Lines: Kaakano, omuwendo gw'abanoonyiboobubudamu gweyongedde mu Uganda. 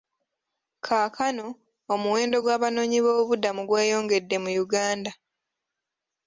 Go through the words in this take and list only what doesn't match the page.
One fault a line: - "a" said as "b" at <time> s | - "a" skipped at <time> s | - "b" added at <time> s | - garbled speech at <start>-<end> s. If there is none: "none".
none